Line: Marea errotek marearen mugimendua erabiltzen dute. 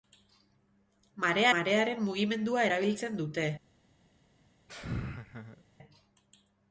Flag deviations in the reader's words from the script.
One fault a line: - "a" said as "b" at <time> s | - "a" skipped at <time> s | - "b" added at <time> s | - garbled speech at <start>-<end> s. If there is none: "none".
- "errotek" skipped at 1.5 s